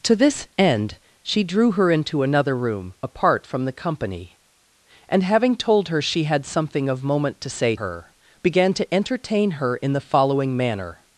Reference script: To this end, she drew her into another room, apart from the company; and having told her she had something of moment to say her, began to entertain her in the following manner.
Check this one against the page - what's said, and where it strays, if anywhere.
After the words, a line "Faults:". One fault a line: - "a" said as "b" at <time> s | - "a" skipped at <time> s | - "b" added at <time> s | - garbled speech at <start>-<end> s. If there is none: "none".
To this end, she drew her into another room, apart from the company; and having told her she had something of moment to say her, began to entertain her in the following manner.
Faults:
none